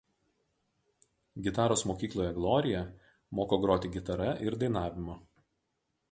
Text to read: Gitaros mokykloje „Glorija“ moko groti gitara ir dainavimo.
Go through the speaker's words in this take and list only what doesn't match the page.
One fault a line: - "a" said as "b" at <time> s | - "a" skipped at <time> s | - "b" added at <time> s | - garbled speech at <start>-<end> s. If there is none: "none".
none